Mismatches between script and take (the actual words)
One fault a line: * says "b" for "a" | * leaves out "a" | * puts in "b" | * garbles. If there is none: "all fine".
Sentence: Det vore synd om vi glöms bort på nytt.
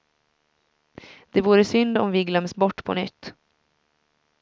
all fine